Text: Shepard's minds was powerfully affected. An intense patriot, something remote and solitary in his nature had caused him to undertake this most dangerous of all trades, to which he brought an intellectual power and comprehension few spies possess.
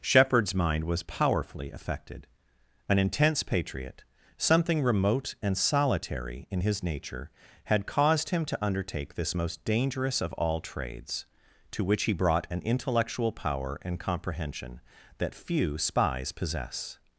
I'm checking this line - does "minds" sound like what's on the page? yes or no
no